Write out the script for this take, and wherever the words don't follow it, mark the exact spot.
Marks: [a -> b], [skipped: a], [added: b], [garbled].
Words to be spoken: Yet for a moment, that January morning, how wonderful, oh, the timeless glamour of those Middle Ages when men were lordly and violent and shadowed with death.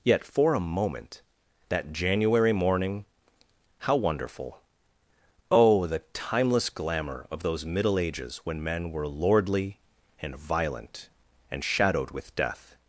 Yet for a moment, that January morning, how wonderful, oh, the timeless glamour of those Middle Ages when men were lordly and violent and shadowed with death.